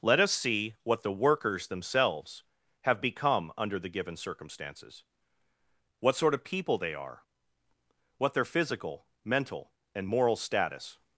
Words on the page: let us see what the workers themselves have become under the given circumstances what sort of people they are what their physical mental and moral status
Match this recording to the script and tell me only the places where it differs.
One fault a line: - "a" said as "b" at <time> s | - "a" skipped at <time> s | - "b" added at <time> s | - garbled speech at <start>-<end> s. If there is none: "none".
none